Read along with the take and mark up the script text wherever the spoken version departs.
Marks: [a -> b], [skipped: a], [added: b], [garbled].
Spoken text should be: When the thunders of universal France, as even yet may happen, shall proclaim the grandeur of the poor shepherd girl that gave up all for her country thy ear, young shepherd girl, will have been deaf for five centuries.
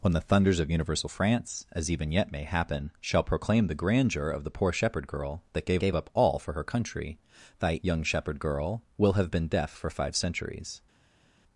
When the thunders of universal France, as even yet may happen, shall proclaim the grandeur of the poor shepherd girl that gave [added: gave] up all for her country thy [skipped: ear,] young shepherd girl, will have been deaf for five centuries.